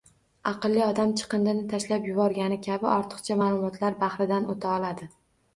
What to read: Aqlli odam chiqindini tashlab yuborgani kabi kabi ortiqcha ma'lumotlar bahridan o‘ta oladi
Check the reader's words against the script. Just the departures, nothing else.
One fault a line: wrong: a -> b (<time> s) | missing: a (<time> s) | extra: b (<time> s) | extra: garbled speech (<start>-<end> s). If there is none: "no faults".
missing: kabi (2.9 s)